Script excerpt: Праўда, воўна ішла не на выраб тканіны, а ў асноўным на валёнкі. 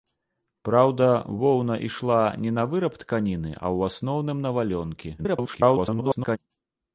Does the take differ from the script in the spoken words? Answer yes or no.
yes